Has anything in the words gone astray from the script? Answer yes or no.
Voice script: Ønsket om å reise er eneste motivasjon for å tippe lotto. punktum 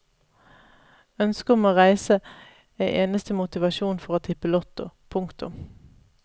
no